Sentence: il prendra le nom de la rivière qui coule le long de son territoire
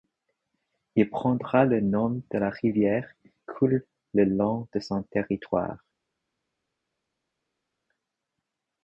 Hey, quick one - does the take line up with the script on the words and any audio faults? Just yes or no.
no